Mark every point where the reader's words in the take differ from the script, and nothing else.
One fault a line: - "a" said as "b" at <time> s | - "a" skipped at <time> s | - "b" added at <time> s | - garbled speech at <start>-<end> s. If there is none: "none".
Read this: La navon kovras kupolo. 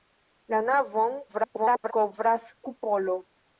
- garbled speech at 1.3-1.9 s